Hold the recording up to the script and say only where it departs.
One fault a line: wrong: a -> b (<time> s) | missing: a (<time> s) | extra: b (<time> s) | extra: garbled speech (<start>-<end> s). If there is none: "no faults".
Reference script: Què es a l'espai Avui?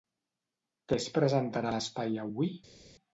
extra: presentarà (1.2 s)